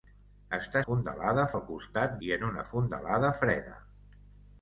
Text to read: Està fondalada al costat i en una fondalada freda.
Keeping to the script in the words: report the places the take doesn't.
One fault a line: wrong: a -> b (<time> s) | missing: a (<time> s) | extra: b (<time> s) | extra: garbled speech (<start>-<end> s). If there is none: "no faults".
no faults